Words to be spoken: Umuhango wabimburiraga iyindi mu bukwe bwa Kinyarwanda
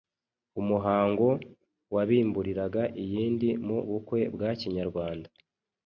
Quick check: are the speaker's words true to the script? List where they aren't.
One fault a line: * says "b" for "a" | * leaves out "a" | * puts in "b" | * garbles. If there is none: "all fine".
all fine